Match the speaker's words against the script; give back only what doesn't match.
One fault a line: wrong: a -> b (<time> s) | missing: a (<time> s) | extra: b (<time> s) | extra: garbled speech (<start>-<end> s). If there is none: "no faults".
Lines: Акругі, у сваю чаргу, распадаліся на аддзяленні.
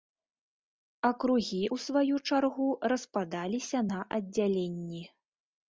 no faults